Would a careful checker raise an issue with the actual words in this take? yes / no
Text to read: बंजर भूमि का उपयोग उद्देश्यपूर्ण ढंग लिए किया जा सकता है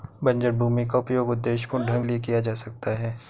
no